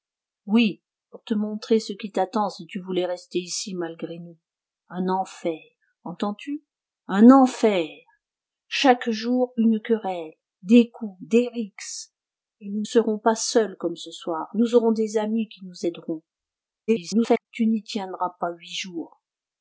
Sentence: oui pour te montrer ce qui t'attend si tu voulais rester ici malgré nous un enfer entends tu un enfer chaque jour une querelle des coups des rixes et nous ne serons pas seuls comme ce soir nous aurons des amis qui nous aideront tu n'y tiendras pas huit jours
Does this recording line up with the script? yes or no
no